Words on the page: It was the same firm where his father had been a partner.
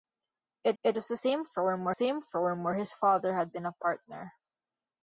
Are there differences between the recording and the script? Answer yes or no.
yes